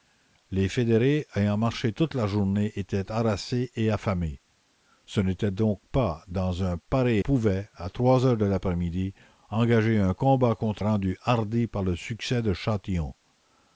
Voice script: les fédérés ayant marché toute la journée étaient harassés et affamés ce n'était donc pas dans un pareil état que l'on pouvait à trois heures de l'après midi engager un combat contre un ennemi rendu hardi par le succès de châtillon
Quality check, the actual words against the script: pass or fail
fail